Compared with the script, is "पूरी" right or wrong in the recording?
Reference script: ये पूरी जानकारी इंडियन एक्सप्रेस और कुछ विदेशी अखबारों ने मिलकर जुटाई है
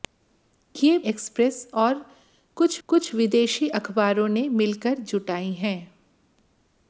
wrong